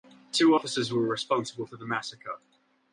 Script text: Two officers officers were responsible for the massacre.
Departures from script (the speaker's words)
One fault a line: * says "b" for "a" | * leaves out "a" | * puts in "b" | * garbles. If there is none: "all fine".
* leaves out "officers"